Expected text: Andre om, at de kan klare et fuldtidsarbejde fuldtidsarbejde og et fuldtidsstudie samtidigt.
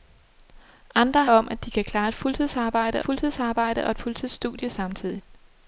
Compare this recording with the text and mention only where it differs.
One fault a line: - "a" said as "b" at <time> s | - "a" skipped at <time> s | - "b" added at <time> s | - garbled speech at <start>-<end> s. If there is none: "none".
none